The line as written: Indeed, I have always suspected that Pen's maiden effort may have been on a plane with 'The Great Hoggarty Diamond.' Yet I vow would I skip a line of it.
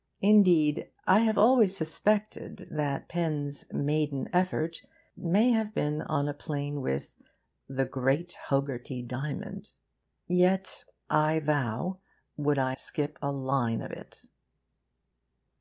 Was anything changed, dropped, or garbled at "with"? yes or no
no